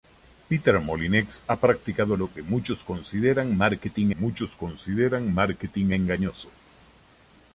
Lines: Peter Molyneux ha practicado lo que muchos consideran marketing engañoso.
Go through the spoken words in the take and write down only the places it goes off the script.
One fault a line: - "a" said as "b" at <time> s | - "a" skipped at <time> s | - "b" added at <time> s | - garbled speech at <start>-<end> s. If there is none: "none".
- "muchos consideran marketing" added at 4.1 s